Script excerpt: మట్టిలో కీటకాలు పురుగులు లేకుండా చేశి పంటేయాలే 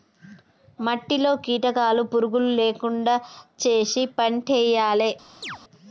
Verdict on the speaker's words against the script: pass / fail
pass